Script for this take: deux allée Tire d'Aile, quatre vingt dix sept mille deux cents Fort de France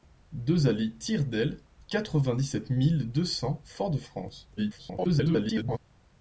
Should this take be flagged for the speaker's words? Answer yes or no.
yes